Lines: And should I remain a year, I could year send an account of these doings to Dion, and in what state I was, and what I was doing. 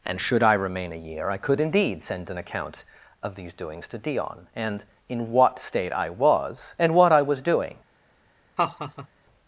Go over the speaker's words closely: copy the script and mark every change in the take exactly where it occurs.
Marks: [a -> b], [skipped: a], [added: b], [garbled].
And should I remain a year, I could [year -> indeed] send an account of these doings to Dion, and in what state I was, and what I was doing.